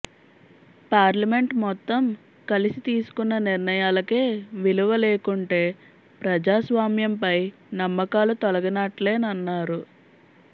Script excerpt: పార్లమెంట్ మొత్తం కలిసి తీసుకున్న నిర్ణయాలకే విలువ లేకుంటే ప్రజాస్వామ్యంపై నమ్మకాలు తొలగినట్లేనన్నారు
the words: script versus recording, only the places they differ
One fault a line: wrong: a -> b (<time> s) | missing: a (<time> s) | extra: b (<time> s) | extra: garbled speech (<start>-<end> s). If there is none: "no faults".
no faults